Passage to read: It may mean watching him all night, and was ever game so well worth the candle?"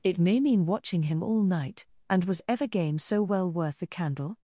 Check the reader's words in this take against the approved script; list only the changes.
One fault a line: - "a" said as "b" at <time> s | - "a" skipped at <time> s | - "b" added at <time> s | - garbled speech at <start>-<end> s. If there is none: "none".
none